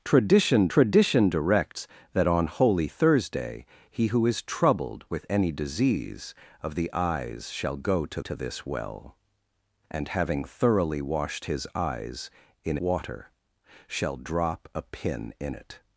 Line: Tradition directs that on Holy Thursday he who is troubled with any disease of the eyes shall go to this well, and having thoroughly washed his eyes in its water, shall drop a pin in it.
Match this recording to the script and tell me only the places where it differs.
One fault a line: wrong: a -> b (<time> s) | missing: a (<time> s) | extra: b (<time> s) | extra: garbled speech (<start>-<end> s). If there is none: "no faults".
extra: tradition (0.7 s)
extra: to (8.2 s)
missing: its (12.8 s)